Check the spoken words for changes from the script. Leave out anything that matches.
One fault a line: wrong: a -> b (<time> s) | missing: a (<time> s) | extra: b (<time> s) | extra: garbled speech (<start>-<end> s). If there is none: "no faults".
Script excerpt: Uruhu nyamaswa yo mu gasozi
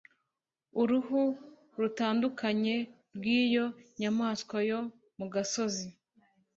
extra: rutandukanye rw'iyo (1.8 s)